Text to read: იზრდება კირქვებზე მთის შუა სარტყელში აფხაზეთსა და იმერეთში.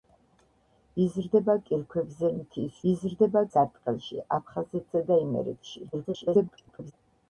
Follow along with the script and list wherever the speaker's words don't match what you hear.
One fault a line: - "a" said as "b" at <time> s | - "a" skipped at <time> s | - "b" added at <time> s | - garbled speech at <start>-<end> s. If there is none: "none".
- "შუა" said as "იზრდება" at 2.9 s
- garbled speech at 5.9-6.9 s